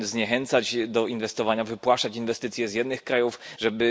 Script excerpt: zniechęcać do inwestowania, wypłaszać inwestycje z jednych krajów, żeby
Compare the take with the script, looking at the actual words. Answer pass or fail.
pass